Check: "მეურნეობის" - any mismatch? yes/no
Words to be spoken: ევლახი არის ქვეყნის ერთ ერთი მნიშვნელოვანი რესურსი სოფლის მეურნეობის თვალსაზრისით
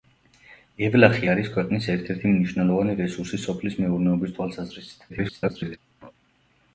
no